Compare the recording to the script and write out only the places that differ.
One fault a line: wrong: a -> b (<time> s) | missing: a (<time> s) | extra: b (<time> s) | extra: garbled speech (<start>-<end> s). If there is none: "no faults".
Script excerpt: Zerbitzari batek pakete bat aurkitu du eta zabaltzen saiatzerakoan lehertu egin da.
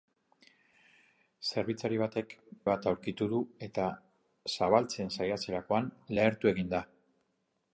missing: pakete (2.3 s)